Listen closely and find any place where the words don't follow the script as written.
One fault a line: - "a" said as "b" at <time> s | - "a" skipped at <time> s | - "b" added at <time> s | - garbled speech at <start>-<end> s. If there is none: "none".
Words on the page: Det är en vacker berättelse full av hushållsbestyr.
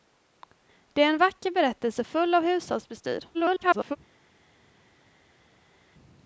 - garbled speech at 3.3-4.0 s